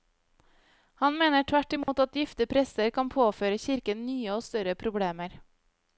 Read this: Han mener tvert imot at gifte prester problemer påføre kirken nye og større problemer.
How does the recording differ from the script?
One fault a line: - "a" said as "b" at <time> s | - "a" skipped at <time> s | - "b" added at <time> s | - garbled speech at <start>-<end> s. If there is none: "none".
- "problemer" said as "kan" at 3.0 s